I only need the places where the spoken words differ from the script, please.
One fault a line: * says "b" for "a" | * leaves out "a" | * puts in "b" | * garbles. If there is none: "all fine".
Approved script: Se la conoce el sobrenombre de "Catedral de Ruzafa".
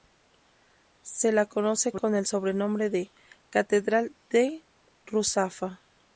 * puts in "con"